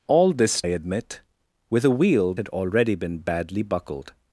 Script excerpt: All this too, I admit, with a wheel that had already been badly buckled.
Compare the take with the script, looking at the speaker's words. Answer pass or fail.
fail